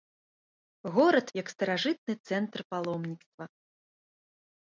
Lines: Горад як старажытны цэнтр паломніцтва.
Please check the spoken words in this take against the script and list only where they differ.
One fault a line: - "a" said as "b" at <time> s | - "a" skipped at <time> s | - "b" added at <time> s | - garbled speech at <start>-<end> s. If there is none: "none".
none